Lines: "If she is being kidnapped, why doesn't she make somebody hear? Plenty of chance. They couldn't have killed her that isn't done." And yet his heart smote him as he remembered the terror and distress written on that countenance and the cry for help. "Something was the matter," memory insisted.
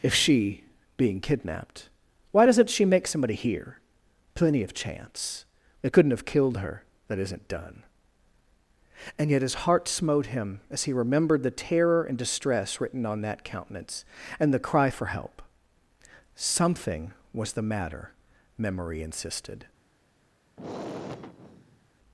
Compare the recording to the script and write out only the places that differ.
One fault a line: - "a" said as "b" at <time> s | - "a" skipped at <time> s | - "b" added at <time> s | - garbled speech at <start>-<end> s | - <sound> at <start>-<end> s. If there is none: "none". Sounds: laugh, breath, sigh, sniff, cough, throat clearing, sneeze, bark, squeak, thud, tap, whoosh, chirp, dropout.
- "is" skipped at 0.6 s
- sigh at 20.6-21.9 s